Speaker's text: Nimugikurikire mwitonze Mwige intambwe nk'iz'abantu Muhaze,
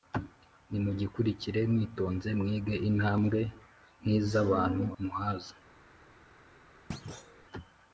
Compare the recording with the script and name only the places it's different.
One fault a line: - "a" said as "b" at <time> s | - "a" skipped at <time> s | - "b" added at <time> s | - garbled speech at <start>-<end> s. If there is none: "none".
none